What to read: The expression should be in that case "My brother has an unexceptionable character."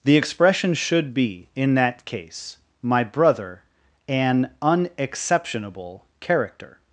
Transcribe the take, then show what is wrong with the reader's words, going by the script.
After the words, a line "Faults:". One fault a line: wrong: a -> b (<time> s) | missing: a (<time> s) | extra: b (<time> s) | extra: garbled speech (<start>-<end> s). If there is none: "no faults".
The expression should be in that case "My brother an unexceptionable character."
Faults:
missing: has (3.6 s)